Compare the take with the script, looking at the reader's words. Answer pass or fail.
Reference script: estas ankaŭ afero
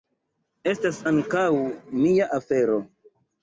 fail